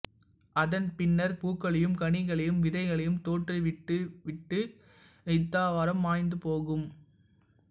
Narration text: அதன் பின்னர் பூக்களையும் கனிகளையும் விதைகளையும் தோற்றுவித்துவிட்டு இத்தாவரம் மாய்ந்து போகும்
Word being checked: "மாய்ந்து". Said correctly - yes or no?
yes